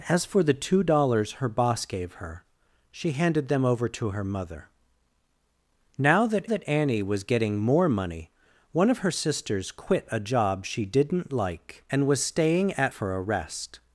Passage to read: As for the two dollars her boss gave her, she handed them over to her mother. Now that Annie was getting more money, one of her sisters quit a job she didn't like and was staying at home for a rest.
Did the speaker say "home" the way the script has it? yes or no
no